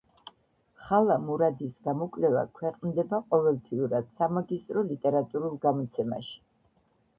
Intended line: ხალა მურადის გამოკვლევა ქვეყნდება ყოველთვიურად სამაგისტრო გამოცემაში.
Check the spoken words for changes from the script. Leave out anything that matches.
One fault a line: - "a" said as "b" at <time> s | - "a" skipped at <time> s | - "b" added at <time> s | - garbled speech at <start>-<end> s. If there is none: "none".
- "ლიტერატურულ" added at 4.9 s